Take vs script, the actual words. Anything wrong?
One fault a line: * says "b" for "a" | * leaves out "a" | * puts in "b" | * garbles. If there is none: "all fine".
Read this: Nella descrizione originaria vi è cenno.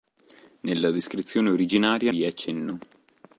all fine